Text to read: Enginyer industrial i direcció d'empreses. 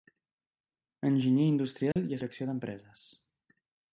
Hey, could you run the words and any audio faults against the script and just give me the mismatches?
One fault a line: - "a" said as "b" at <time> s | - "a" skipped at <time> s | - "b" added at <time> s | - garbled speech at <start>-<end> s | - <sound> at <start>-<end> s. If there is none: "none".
- dropout at 1.9-2.0 s